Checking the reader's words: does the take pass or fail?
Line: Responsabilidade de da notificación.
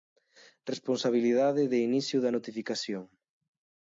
fail